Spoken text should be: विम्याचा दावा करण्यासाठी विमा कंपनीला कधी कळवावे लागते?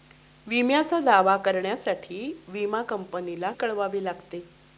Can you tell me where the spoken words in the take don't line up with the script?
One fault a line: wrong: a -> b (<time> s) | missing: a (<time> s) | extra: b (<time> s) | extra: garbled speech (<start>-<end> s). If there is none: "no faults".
missing: कधी (3.5 s)